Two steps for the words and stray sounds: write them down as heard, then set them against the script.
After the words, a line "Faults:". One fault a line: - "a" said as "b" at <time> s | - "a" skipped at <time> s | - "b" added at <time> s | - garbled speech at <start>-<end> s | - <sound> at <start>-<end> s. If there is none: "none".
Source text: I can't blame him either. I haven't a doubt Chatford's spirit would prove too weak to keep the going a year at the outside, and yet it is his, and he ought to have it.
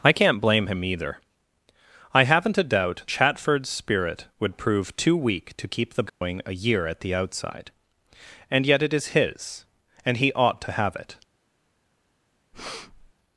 I can't blame him either. I haven't a doubt Chatford's spirit would prove too weak to keep the going a year at the outside, and yet it is his, and he ought to have it.
Faults:
- dropout at 6.1-6.2 s
- breath at 12.5-13.1 s